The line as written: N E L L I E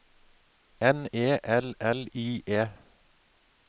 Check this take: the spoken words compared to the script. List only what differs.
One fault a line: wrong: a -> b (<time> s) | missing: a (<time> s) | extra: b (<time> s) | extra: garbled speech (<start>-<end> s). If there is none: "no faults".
no faults